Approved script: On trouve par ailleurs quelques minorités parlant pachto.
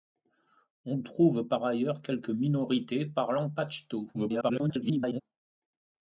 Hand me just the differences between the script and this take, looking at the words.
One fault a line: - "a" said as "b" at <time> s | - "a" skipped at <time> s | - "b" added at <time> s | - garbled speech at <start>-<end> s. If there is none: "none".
- garbled speech at 4.1-5.2 s